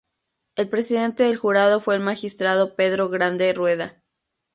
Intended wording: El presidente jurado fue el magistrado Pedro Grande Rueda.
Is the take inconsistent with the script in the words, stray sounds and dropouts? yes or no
yes